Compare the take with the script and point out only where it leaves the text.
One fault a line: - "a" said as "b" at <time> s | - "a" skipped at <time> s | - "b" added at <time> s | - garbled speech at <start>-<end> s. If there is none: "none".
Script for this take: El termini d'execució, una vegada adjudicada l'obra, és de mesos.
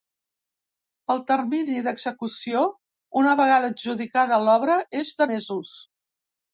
none